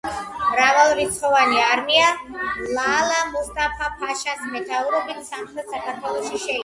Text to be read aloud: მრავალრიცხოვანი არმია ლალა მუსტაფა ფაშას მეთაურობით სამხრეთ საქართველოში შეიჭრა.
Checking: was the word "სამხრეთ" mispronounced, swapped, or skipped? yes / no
no